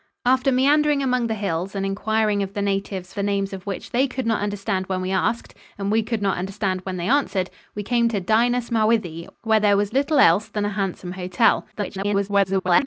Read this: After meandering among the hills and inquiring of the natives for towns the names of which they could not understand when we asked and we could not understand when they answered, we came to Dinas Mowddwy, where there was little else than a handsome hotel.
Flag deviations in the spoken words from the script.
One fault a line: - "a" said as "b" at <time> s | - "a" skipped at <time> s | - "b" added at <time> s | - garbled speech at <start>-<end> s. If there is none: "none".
- "for towns" skipped at 3.1 s
- garbled speech at 11.7-12.9 s